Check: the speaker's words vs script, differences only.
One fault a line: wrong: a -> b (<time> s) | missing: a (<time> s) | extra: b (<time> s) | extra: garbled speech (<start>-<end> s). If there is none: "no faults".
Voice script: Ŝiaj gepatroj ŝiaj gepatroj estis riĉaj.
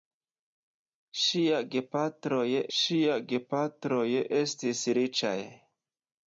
no faults